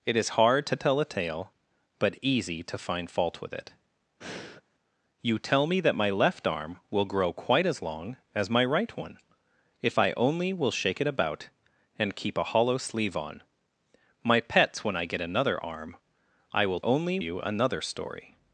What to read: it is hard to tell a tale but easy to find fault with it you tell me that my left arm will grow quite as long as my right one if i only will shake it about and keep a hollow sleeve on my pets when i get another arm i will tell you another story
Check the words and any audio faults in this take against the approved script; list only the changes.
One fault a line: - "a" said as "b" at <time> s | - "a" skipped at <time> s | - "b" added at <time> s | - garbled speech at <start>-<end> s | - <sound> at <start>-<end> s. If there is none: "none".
- breath at 4.2-4.6 s
- "tell" said as "only" at 16.8 s